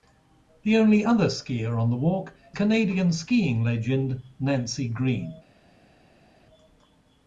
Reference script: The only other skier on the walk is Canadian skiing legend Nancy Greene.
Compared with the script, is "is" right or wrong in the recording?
wrong